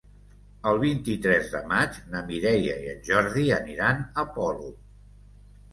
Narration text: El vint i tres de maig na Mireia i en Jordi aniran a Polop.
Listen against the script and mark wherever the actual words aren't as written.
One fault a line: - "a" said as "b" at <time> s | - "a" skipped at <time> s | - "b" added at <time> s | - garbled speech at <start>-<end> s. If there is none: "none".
none